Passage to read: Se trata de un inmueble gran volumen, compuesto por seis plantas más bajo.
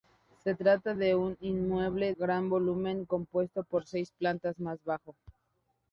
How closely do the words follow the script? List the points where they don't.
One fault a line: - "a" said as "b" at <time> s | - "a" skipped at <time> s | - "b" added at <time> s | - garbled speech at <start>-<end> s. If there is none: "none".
none